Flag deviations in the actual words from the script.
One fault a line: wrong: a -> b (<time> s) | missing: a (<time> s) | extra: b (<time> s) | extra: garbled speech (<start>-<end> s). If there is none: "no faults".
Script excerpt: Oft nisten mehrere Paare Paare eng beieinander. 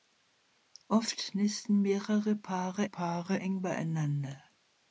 no faults